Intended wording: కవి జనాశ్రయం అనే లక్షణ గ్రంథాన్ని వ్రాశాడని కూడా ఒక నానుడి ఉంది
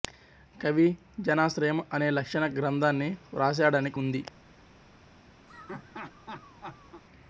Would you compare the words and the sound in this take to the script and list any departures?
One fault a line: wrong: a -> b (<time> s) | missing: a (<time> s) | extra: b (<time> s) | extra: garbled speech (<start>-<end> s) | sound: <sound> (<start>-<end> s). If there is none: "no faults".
missing: కూడా ఒక నానుడి (3.9 s)
sound: laugh (5.5-7.0 s)